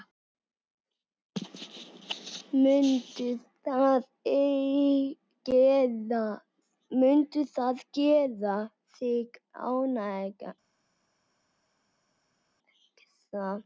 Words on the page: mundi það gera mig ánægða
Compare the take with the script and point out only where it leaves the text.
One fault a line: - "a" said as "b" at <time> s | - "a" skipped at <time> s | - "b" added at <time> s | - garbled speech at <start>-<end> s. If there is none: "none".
- "mig" said as "þig" at 9.0 s